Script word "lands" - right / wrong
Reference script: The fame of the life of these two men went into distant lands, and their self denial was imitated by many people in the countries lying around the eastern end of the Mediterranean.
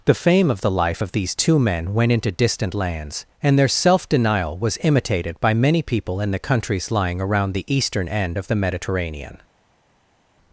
right